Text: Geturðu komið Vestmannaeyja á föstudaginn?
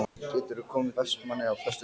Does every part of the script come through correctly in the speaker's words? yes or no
yes